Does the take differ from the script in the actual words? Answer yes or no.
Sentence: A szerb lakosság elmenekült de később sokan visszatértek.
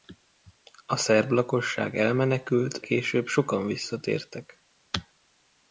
yes